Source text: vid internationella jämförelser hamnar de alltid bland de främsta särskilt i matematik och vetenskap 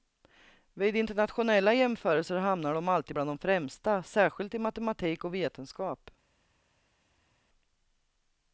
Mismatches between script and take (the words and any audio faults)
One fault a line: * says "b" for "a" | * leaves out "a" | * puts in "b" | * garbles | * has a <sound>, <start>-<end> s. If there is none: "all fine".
all fine